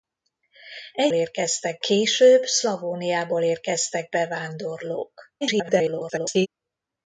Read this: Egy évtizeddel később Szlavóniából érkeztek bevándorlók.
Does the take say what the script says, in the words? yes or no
no